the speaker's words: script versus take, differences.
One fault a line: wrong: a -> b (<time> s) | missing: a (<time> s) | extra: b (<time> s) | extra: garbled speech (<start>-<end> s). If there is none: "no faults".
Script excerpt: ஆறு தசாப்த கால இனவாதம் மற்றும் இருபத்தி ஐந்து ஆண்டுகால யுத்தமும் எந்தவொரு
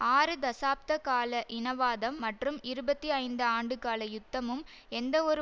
no faults